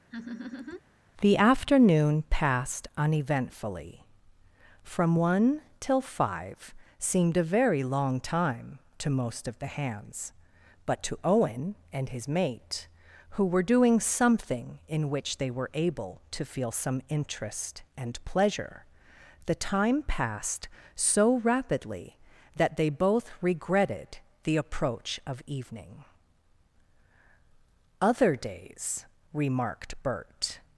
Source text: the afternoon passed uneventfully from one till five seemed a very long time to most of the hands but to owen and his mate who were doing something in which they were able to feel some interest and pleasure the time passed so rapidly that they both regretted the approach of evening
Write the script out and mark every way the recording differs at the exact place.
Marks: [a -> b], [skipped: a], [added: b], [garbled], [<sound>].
[laugh] the afternoon passed uneventfully from one till five seemed a very long time to most of the hands but to owen and his mate who were doing something in which they were able to feel some interest and pleasure the time passed so rapidly that they both regretted the approach of evening [added: other days remarked bert]